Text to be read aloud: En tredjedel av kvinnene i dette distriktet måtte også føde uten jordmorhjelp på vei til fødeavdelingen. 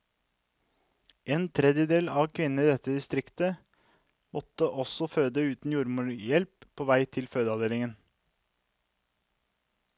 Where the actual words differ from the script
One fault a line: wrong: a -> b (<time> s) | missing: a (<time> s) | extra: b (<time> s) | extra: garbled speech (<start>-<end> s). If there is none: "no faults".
no faults